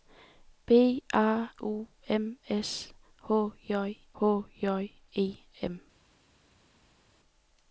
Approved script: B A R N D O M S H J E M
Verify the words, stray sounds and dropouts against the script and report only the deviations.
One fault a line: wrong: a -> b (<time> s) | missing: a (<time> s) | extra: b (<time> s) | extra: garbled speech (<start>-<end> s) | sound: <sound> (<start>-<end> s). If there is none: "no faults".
missing: R N D (1.5 s)
extra: H J (4.2 s)